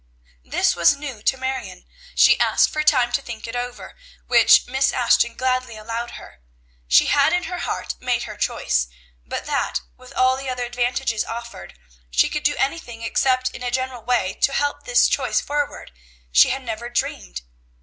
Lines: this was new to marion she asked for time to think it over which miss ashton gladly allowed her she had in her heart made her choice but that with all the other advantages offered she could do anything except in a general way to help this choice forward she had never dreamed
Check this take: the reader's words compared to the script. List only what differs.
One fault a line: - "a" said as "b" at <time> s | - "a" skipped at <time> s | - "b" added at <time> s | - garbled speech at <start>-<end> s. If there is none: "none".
none